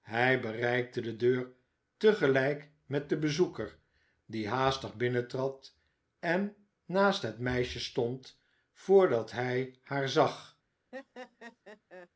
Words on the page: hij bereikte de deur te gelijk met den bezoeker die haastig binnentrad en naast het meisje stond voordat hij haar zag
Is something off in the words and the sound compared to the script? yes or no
yes